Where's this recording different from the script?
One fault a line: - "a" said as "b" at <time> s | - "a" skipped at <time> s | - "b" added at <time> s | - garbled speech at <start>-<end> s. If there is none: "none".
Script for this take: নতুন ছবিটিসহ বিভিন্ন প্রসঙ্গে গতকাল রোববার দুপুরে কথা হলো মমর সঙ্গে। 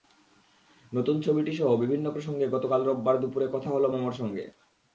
none